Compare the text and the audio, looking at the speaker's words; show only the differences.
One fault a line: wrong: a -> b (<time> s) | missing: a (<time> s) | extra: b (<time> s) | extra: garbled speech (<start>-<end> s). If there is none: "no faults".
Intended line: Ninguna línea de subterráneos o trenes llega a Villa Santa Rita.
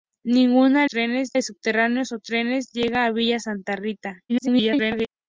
wrong: línea -> trenes (0.8 s)
extra: garbled speech (4.3-5.1 s)